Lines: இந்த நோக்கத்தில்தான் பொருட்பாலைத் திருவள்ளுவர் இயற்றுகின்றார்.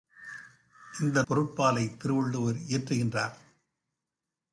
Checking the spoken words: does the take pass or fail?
fail